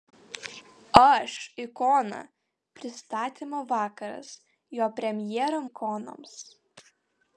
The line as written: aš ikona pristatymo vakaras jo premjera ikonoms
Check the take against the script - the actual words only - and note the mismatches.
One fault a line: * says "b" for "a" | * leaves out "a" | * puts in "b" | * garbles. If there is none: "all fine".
all fine